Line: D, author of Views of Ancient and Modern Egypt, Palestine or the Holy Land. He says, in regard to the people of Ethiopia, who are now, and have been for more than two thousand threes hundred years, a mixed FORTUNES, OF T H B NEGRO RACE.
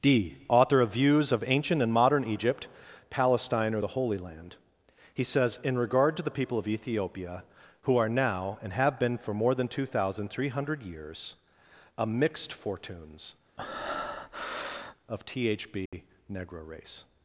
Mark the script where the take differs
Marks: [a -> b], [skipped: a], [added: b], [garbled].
D, author of Views of Ancient and Modern Egypt, Palestine or the Holy Land. He says, in regard to the people of Ethiopia, who are now, and have been for more than two thousand [threes -> three] hundred years, a mixed FORTUNES, OF T H B NEGRO RACE.